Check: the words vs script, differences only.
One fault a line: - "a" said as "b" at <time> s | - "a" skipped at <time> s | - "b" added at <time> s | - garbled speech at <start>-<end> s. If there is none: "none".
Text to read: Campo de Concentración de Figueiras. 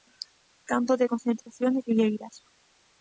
none